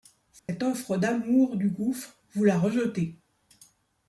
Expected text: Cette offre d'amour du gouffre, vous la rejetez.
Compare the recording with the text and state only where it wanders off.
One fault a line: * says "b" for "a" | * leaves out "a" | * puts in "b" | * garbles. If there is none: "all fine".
all fine